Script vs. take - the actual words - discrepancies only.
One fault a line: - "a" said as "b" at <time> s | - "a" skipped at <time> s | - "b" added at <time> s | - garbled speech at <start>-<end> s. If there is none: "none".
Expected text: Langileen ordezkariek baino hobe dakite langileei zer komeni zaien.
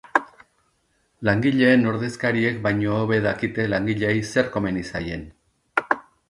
none